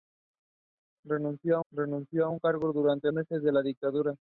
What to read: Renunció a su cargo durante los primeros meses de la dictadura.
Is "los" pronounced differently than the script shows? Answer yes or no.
yes